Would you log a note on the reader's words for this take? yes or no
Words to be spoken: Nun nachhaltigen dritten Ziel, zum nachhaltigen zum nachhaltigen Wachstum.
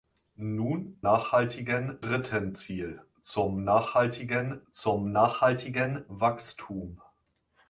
no